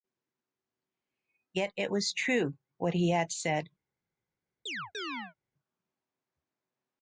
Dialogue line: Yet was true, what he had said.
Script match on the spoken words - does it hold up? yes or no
no